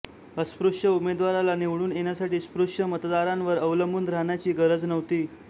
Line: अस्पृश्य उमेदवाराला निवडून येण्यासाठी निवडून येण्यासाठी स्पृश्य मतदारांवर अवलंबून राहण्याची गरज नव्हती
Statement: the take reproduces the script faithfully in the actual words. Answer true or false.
false